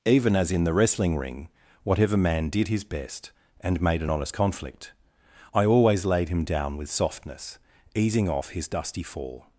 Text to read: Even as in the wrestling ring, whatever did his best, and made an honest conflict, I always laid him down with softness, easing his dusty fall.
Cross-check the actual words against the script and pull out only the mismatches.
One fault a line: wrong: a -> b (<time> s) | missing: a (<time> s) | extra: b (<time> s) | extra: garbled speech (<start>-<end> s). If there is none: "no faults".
extra: man (2.2 s)
extra: off (8.3 s)